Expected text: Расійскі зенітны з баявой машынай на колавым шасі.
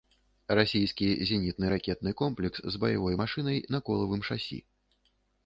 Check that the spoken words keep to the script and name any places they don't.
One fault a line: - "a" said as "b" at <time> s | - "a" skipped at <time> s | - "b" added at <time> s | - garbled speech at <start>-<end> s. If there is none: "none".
- "ракетны комплекс" added at 1.7 s